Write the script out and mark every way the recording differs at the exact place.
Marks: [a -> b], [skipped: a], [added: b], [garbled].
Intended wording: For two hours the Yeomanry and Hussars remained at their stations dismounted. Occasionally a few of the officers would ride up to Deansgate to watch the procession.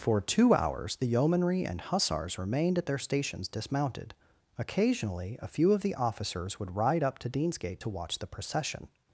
For two hours the Yeomanry and Hussars remained at their stations dismounted. Occasionally a few of the officers would ride up to Deansgate to watch the procession.